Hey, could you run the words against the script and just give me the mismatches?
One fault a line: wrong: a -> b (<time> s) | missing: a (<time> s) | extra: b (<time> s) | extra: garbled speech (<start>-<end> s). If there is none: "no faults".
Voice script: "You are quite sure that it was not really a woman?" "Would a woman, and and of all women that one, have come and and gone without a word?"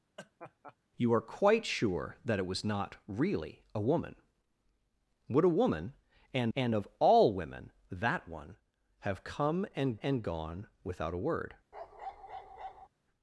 no faults